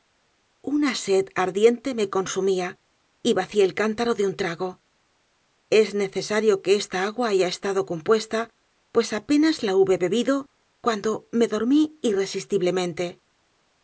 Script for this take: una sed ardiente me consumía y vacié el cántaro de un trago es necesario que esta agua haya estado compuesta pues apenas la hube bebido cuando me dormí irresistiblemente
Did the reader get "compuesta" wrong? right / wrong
right